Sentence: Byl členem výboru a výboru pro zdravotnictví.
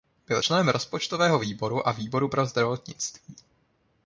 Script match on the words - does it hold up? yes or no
no